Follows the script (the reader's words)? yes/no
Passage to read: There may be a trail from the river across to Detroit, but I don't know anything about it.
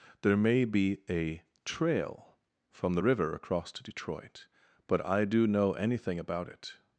no